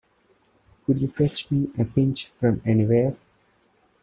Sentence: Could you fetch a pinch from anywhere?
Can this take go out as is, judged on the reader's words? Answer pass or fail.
fail